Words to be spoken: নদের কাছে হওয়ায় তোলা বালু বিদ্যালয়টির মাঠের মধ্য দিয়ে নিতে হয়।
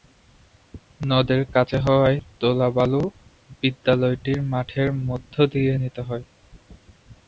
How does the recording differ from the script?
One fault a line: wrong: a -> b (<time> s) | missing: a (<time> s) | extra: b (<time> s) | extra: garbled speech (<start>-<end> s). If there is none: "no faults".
no faults